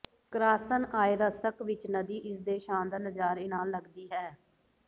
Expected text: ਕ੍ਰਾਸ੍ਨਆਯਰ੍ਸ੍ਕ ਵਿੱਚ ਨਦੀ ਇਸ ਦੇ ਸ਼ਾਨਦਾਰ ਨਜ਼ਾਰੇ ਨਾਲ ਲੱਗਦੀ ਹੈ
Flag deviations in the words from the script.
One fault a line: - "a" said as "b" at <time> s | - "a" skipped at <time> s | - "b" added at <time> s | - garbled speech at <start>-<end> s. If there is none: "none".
none